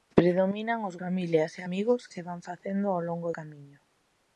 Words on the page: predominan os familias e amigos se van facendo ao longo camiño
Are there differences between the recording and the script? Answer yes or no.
no